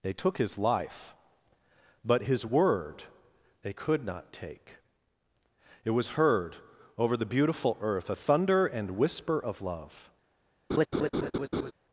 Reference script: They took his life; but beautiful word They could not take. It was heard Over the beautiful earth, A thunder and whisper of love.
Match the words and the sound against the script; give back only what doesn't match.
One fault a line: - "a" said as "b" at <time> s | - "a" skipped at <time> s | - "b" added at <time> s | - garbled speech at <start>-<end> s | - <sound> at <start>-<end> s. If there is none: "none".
- "beautiful" said as "his" at 2.2 s
- laugh at 10.7-11.7 s